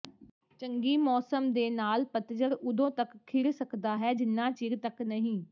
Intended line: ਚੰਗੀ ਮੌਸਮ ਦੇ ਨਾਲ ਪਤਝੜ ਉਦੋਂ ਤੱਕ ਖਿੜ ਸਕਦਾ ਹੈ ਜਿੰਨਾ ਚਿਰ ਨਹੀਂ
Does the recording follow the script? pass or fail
fail